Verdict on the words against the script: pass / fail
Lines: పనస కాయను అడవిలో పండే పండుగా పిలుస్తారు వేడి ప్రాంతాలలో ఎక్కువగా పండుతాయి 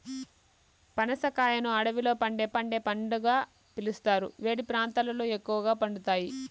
fail